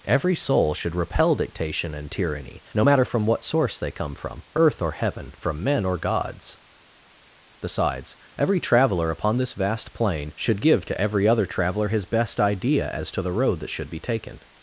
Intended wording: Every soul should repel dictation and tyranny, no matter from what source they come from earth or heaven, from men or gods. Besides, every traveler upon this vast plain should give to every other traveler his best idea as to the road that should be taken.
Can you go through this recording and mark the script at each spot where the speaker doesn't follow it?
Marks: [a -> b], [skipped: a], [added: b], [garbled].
Every soul should repel dictation and tyranny, no matter from what source they come from earth or heaven, from men or gods. Besides, every traveler upon this vast plain should give to every other traveler his best idea as to the road that should be taken.